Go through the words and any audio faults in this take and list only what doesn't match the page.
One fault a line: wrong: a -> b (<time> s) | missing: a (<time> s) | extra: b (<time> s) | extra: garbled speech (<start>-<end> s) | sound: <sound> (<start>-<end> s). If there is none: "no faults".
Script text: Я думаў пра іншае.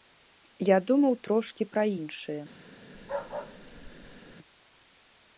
extra: трошкі (1.3 s)
sound: bark (2.9-4.4 s)